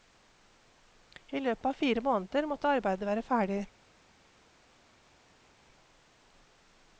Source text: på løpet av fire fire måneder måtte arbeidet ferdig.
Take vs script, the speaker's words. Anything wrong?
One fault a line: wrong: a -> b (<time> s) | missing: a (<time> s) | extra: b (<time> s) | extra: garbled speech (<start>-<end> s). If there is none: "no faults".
wrong: på -> I (1.3 s)
missing: fire (2.0 s)
extra: være (3.1 s)